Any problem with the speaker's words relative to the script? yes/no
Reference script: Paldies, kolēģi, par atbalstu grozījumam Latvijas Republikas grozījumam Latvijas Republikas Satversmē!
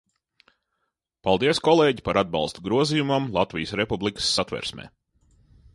yes